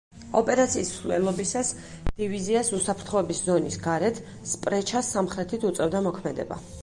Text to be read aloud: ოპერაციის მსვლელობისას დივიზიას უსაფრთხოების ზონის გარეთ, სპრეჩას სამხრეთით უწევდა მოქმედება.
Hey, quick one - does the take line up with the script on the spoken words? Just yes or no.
yes